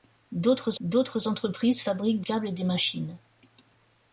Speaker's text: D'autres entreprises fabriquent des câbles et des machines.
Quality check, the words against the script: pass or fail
fail